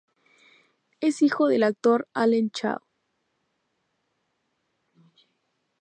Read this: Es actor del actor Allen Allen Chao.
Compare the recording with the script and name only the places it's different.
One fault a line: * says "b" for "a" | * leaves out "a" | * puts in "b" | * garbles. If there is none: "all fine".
* says "hijo" for "actor"
* leaves out "Allen"